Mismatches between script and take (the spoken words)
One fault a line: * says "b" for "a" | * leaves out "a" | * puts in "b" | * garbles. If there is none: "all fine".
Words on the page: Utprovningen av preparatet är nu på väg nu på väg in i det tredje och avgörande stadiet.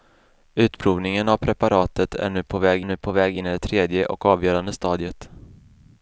all fine